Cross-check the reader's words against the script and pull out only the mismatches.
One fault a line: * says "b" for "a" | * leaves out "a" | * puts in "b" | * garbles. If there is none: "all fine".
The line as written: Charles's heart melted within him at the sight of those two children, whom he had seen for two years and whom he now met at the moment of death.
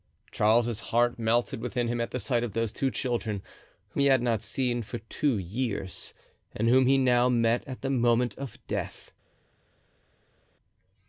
* puts in "not"